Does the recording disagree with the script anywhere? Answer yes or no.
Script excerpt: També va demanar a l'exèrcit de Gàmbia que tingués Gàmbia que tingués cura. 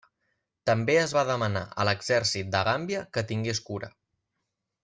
yes